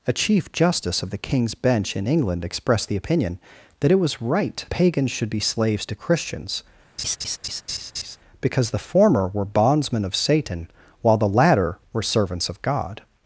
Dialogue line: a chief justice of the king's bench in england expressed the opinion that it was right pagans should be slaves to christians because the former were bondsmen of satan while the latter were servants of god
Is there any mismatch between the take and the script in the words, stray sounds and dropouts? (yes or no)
yes